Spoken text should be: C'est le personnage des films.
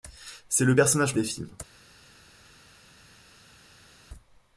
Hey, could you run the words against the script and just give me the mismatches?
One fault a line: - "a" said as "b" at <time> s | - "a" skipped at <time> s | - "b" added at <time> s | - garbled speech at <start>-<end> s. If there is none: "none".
none